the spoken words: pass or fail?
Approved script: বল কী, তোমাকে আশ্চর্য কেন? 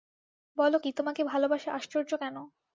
fail